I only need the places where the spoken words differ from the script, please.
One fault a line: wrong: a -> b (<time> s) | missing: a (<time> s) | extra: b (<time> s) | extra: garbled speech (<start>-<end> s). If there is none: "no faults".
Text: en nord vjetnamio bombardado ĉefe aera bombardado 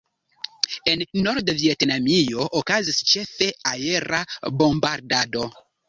wrong: bombardado -> okazis (2.6 s)